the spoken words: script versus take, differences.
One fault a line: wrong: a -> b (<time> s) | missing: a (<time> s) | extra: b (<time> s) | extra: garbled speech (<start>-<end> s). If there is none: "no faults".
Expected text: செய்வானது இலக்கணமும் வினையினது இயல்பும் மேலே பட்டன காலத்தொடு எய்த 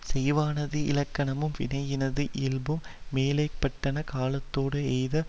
no faults